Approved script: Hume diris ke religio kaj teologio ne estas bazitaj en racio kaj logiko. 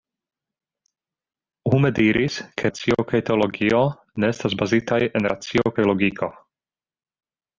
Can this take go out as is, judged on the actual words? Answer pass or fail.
fail